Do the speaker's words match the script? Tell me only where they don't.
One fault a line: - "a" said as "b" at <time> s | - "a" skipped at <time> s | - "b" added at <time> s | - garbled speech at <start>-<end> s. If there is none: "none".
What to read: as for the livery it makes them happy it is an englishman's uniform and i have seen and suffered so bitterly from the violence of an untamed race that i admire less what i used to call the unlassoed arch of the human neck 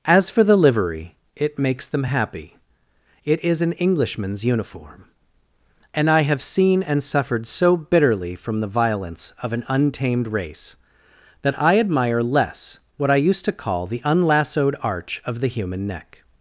none